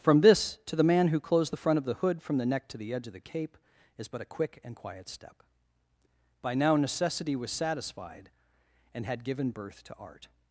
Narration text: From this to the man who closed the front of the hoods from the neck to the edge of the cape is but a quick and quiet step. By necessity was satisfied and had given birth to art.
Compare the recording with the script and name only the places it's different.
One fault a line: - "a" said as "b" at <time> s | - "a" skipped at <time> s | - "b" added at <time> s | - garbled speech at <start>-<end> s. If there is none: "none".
- "hoods" said as "hood" at 2.0 s
- "now" added at 6.5 s